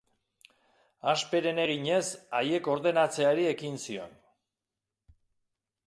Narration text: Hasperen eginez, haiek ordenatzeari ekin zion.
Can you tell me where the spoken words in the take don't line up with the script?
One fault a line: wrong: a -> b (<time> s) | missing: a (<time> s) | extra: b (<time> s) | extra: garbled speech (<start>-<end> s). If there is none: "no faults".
no faults